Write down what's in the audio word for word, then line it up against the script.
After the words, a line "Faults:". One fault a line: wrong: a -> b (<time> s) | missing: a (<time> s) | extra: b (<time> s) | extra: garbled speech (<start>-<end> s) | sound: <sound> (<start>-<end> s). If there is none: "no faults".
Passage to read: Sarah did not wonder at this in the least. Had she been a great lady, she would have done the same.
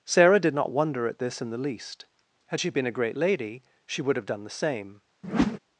Sarah did not wonder at this in the least. Had she been a great lady, she would have done the same.
Faults:
sound: whoosh (5.2-5.6 s)